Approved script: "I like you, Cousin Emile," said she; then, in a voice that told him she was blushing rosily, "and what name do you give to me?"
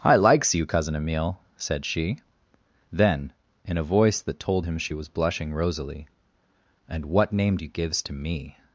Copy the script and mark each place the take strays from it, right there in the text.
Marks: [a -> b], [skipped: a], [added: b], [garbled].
"I [like -> likes] you, Cousin Emile," said she; then, in a voice that told him she was blushing rosily, "and what name do you [give -> gives] to me?"